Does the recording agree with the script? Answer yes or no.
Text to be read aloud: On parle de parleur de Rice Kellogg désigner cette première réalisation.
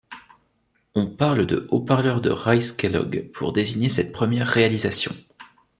no